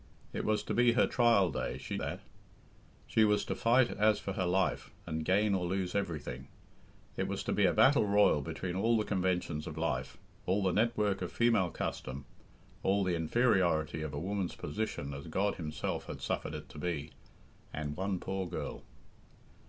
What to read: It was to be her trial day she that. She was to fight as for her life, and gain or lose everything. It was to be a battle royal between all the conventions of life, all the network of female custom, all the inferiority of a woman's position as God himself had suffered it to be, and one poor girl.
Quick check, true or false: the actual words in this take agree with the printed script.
true